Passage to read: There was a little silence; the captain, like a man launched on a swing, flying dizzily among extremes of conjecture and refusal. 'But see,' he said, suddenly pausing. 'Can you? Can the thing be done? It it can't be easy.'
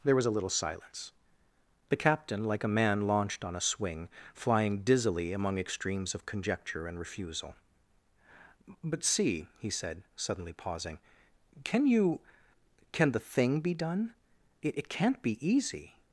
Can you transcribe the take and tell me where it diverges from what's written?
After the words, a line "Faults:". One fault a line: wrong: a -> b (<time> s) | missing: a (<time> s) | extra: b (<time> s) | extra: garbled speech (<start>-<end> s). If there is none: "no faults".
There was a little silence; the captain, like a man launched on a swing, flying dizzily among extremes of conjecture and refusal. 'But see,' he said, suddenly pausing. 'Can you? Can the thing be done? It it can't be easy.'
Faults:
no faults